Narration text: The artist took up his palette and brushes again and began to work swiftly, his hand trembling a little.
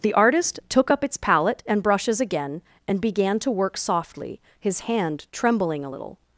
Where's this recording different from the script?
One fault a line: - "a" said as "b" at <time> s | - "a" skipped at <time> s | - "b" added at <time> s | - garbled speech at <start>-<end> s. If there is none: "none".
- "his" said as "its" at 1.0 s
- "swiftly" said as "softly" at 3.8 s